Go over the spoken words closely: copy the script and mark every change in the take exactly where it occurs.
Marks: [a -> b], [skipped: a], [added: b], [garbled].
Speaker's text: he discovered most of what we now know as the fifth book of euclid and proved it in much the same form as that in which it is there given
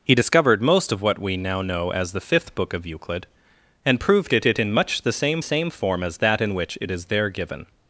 he discovered most of what we now know as the fifth book of euclid and proved it [added: it] in much the same [added: same] form as that in which it is there given